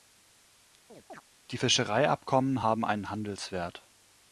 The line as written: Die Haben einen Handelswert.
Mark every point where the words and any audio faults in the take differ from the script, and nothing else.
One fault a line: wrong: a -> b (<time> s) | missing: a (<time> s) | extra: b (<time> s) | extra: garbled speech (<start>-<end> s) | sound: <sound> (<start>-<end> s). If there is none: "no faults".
sound: chirp (0.9-1.2 s)
extra: Fischereiabkommen (1.5 s)